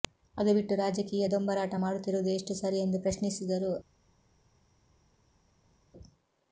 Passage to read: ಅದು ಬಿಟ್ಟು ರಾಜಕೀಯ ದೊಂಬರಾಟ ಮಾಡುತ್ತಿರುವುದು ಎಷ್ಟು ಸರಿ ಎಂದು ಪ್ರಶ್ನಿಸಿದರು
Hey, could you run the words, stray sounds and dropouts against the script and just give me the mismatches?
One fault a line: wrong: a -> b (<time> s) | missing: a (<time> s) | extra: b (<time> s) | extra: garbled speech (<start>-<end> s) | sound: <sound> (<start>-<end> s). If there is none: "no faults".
no faults